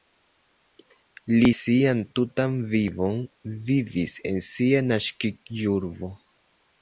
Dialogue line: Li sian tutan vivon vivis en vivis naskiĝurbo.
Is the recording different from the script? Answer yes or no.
yes